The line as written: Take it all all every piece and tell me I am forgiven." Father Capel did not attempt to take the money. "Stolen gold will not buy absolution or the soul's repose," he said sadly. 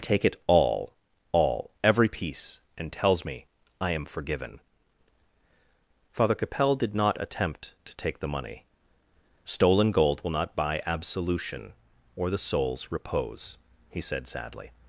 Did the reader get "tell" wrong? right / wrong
wrong